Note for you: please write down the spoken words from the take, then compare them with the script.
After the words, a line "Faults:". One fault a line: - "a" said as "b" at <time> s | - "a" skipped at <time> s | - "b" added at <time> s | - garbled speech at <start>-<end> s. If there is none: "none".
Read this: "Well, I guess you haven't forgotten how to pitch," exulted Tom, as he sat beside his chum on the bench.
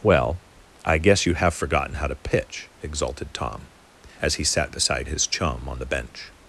"Well, I guess you have forgotten how to pitch," exulted Tom, as he sat beside his chum on the bench.
Faults:
- "haven't" said as "have" at 1.4 s